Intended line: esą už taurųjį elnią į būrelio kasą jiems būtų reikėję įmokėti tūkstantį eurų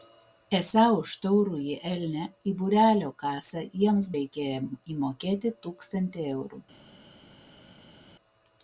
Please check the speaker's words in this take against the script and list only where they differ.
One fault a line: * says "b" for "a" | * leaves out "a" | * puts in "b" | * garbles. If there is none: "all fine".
* leaves out "būtų"